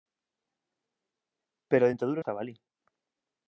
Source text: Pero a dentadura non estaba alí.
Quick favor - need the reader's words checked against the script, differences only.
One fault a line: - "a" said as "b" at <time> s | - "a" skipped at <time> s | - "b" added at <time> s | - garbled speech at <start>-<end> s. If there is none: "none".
- "non" skipped at 2.2 s